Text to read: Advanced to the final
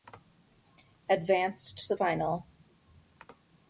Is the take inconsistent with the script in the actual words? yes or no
yes